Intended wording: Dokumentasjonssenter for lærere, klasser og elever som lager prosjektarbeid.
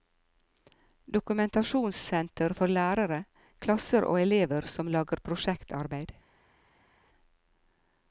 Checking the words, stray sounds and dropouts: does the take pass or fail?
pass